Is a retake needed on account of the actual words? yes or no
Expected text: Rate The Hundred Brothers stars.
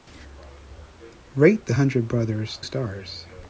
no